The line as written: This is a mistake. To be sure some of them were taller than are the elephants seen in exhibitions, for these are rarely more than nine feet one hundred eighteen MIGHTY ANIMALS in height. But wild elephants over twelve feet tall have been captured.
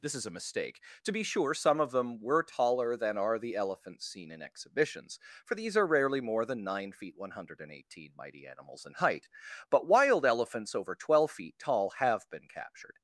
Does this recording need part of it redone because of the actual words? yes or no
no